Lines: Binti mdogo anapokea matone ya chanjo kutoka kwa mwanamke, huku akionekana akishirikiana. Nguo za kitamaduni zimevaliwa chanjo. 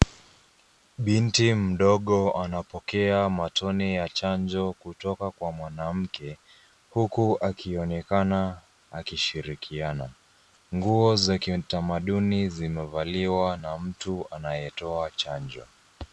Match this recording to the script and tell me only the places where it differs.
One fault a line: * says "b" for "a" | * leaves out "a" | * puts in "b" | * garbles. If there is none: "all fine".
* puts in "na mtu anayetoa"